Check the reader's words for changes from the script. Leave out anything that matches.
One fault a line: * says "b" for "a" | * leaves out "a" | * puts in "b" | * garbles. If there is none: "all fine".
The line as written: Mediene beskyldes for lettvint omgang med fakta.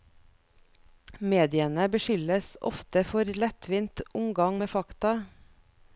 * puts in "ofte"